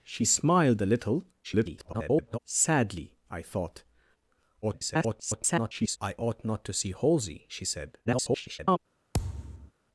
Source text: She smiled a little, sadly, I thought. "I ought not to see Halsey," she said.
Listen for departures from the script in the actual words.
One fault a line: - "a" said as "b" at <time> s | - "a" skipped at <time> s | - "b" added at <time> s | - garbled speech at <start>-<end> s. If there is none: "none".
- garbled speech at 1.4-2.4 s
- garbled speech at 4.6-6.0 s
- garbled speech at 8.1-8.8 s